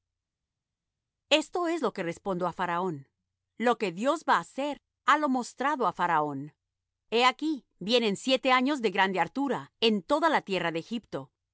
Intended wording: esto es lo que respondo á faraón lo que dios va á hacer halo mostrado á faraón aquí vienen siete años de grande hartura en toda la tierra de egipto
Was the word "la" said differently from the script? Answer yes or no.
no